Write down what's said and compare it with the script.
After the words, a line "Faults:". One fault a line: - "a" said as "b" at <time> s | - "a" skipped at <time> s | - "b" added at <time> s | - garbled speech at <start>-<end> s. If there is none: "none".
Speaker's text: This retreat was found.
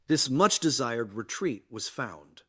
This much desired retreat was found.
Faults:
- "much desired" added at 0.3 s